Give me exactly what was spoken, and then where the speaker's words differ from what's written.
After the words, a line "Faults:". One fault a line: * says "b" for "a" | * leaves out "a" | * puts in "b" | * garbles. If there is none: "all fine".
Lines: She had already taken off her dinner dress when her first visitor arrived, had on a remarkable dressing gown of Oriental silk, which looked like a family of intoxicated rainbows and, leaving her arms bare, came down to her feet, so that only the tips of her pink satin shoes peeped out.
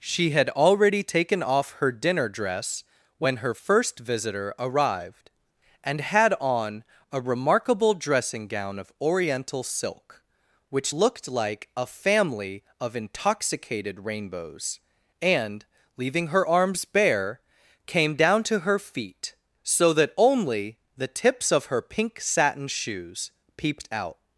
She had already taken off her dinner dress when her first visitor arrived, and had on a remarkable dressing gown of Oriental silk, which looked like a family of intoxicated rainbows and, leaving her arms bare, came down to her feet, so that only the tips of her pink satin shoes peeped out.
Faults:
* puts in "and"